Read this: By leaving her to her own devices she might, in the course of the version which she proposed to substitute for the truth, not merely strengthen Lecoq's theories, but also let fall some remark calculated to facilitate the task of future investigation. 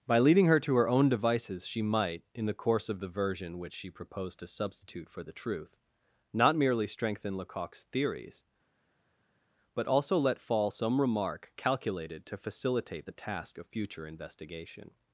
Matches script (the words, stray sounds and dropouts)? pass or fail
fail